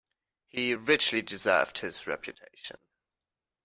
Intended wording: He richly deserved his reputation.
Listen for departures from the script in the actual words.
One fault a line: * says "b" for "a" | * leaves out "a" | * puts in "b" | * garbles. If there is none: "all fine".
all fine